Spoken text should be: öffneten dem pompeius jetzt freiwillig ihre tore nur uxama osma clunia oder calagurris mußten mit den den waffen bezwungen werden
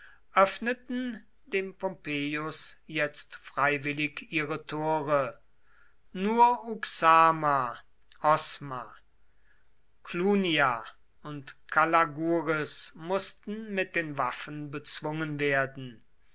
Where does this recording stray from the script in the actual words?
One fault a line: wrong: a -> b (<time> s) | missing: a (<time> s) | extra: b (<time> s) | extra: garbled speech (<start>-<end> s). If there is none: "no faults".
wrong: oder -> und (11.2 s)
missing: den (14.2 s)